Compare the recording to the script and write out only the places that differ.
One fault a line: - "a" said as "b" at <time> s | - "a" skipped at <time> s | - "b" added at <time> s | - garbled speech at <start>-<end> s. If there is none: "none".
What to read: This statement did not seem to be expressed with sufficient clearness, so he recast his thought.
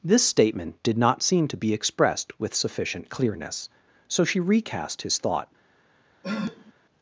- "he" said as "she" at 4.2 s